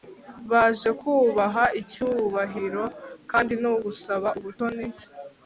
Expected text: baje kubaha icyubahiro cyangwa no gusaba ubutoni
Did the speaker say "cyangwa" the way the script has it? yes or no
no